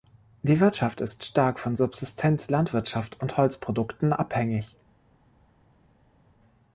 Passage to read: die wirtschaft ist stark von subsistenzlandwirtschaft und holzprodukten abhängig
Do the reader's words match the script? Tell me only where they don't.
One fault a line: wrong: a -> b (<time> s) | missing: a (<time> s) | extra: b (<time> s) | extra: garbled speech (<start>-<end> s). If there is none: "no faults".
no faults